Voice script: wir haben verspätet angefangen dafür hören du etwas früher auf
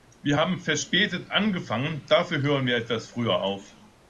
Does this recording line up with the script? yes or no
no